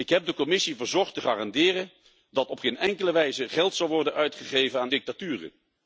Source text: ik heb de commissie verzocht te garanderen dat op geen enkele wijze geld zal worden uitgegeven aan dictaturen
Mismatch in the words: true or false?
false